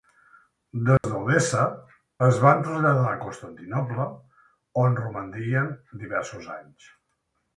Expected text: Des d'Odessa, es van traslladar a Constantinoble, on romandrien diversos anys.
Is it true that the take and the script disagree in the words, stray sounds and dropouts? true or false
true